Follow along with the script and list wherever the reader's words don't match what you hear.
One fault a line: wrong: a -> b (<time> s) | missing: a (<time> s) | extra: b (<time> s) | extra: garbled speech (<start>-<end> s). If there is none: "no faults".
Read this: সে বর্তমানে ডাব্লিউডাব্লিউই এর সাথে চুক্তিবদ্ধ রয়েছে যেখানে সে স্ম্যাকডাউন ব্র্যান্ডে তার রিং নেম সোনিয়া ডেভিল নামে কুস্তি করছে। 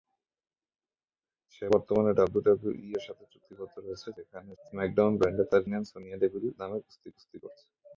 missing: সে (4.5 s)
missing: রিং (5.6 s)
extra: কুস্তি (7.1 s)